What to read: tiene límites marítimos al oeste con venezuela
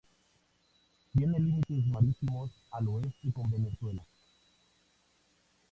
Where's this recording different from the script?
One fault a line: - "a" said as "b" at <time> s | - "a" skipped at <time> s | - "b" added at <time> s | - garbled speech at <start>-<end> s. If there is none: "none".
none